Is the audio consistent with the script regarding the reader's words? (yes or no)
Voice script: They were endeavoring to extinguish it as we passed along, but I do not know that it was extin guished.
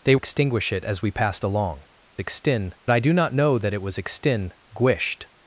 no